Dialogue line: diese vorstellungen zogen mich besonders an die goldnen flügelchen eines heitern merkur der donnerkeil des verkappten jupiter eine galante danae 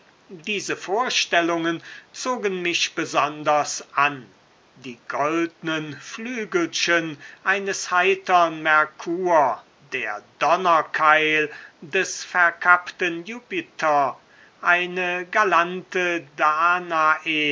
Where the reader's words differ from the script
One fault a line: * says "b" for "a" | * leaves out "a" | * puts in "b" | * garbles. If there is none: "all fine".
all fine